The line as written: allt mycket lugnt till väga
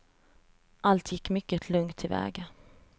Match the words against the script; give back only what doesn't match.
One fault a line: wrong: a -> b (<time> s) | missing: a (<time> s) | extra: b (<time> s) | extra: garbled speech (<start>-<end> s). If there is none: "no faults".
extra: gick (1.1 s)